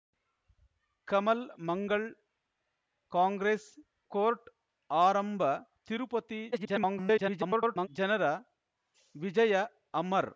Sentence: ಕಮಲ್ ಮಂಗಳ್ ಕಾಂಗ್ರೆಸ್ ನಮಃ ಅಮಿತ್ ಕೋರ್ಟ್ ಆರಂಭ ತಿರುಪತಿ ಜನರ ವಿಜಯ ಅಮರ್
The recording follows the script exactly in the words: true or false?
false